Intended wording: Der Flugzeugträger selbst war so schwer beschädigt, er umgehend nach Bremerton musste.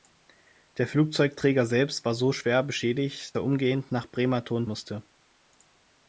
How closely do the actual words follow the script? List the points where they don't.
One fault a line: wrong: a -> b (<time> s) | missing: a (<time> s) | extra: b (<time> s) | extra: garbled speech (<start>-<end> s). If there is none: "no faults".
no faults